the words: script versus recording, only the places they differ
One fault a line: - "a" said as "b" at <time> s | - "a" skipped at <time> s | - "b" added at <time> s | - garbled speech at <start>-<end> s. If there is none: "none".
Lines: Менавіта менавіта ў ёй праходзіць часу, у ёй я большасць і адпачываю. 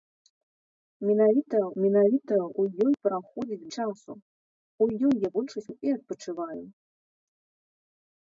none